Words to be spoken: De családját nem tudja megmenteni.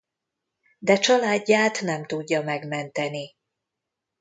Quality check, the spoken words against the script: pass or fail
pass